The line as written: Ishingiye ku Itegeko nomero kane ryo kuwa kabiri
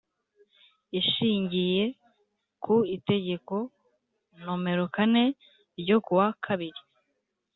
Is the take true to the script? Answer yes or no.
yes